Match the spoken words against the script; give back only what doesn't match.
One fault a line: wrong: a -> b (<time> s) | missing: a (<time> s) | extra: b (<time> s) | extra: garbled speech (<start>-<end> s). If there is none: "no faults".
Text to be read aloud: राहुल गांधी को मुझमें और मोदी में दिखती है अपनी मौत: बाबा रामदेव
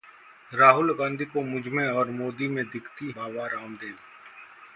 missing: है अपनी मौत (3.1 s)